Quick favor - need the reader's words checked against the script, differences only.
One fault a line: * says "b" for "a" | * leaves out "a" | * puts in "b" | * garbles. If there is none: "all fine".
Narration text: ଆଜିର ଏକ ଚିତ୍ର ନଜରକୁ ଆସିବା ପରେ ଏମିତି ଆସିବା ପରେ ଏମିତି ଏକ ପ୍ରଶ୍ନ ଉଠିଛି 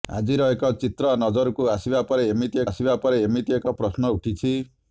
all fine